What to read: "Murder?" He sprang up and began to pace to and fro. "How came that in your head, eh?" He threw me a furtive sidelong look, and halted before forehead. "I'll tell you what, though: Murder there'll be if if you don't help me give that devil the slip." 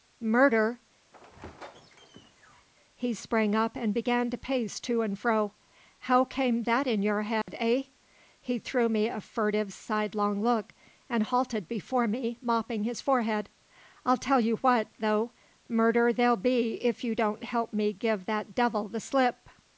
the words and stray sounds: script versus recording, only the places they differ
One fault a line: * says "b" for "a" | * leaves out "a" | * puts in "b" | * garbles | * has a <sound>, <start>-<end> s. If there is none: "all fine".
* has a squeak, 1.1-2.7 s
* has a dropout, 7.4-7.5 s
* puts in "me mopping his"
* leaves out "if"